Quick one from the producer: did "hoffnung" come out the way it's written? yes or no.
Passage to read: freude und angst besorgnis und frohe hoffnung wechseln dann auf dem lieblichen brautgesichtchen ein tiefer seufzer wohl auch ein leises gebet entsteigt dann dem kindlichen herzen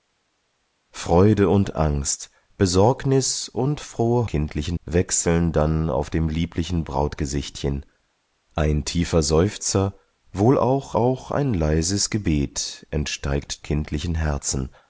no